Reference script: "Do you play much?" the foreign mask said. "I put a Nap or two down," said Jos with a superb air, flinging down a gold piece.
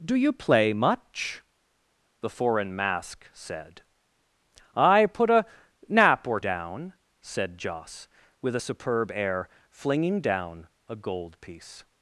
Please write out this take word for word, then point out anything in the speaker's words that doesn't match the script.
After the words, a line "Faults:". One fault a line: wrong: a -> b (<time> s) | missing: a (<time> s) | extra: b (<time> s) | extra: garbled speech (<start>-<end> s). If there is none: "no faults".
"Do you play much?" the foreign mask said. "I put a Nap or down," said Jos with a superb air, flinging down a gold piece.
Faults:
missing: two (6.4 s)